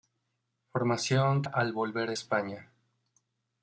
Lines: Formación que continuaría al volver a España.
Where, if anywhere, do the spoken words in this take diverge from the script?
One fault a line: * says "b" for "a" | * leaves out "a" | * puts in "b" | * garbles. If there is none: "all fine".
* leaves out "que continuaría"